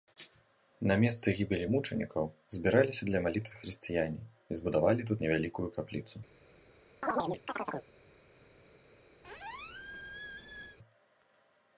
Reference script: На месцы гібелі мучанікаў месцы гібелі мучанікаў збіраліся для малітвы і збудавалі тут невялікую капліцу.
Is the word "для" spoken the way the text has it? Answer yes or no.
yes